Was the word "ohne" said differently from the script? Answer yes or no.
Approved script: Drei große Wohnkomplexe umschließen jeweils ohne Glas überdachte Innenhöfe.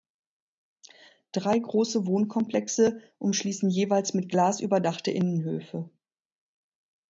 yes